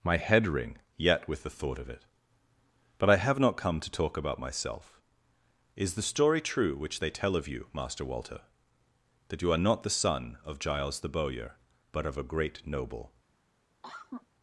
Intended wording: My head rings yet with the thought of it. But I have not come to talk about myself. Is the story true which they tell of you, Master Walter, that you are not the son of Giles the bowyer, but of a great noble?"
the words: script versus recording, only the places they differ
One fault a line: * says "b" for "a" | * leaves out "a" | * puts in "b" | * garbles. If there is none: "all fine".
* says "ring" for "rings"